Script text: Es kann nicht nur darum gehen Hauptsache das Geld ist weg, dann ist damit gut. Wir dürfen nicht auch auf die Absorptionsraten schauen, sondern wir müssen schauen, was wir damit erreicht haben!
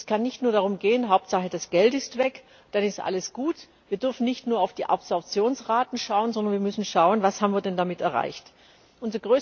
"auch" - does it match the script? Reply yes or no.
no